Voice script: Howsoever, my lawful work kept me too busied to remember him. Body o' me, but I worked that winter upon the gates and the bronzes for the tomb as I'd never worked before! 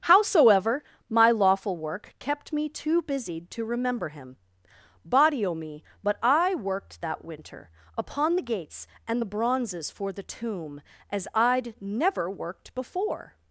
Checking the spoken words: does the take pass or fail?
pass